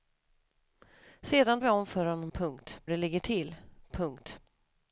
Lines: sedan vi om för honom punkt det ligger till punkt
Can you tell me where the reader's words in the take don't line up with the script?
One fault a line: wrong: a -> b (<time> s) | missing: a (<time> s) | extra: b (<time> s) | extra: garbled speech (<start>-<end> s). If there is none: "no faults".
no faults